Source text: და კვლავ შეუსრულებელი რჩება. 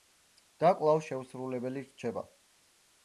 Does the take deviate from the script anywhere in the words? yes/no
no